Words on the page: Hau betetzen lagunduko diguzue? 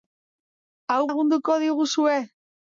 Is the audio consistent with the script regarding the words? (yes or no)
no